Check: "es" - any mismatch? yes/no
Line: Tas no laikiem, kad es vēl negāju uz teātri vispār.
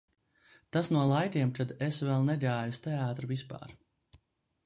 no